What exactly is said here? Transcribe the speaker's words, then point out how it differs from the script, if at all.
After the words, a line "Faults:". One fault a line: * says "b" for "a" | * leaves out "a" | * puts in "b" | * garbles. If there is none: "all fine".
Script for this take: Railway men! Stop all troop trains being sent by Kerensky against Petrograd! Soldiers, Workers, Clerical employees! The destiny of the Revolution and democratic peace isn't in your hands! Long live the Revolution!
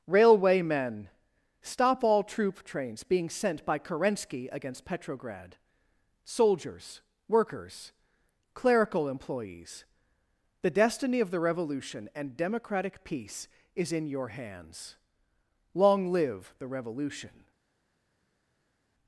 Railway men! Stop all troop trains being sent by Kerensky against Petrograd! Soldiers, Workers, Clerical employees! The destiny of the Revolution and democratic peace is in your hands! Long live the Revolution!
Faults:
* says "is" for "isn't"